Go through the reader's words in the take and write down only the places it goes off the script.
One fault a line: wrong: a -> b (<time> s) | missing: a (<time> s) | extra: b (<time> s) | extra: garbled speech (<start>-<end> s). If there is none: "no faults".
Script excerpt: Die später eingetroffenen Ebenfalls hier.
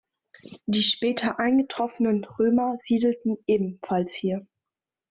extra: Römer siedelten (2.2 s)